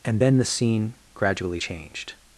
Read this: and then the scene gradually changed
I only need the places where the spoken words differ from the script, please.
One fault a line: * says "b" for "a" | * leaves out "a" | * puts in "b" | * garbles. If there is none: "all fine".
all fine